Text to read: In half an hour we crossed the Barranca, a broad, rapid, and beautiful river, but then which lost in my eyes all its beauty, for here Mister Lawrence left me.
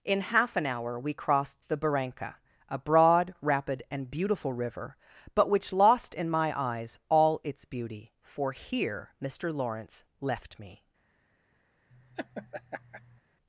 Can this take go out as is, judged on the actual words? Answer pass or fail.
fail